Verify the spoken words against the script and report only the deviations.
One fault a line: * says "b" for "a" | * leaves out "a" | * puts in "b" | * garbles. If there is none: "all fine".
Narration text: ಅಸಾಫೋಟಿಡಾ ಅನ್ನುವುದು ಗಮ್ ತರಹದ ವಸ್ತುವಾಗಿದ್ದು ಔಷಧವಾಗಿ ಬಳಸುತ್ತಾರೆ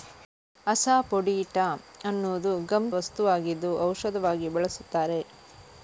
* leaves out "ತರಹದ"